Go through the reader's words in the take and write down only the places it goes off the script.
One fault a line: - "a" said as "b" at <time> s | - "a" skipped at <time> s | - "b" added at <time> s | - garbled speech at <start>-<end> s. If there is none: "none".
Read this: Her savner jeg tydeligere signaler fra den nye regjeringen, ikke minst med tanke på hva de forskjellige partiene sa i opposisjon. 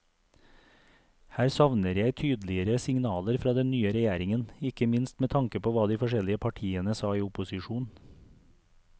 none